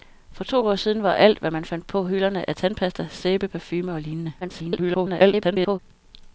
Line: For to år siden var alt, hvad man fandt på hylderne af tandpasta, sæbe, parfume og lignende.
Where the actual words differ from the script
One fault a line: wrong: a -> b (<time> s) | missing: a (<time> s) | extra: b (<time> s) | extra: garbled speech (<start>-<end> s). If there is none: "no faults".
extra: garbled speech (4.4-5.8 s)